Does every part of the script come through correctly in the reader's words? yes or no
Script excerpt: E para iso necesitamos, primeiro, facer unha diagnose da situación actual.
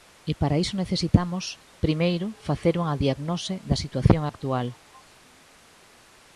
yes